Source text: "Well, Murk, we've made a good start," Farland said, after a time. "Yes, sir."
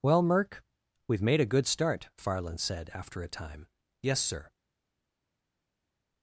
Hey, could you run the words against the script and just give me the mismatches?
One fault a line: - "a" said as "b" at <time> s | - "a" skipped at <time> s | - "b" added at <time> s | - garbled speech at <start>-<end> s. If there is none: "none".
none